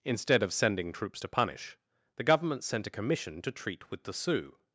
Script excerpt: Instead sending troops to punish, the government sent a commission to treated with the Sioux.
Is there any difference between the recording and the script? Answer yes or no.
yes